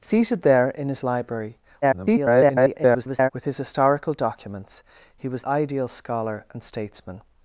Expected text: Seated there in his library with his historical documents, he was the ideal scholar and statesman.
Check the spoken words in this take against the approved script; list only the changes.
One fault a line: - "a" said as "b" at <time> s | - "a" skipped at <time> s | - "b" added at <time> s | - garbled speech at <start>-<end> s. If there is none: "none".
- garbled speech at 1.8-3.3 s
- "the" skipped at 5.4 s